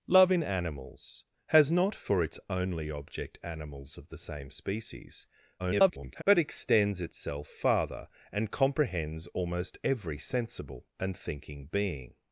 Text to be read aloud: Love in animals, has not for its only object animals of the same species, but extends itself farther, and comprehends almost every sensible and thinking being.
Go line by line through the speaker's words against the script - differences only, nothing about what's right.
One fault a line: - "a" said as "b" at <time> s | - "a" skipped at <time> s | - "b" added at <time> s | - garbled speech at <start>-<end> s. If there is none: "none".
- garbled speech at 5.6-6.2 s